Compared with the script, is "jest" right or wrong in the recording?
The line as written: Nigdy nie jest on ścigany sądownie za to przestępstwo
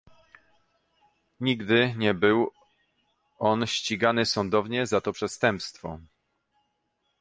wrong